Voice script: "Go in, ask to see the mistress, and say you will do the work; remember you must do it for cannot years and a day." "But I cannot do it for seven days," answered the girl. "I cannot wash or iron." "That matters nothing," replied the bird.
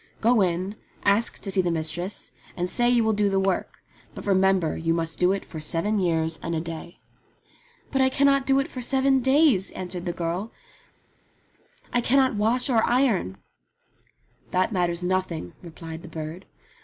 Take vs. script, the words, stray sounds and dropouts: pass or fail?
fail